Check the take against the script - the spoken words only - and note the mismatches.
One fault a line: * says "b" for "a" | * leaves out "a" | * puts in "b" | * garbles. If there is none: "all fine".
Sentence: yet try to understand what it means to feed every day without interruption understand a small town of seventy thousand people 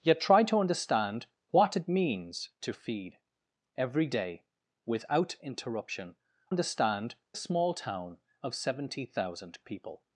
all fine